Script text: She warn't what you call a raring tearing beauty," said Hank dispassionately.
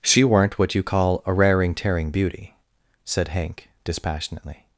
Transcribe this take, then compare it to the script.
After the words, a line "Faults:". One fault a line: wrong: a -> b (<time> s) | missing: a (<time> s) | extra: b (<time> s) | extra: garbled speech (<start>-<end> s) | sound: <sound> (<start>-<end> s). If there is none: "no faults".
She weren't what you call a raring tearing beauty," said Hank dispassionately.
Faults:
wrong: warn't -> weren't (0.2 s)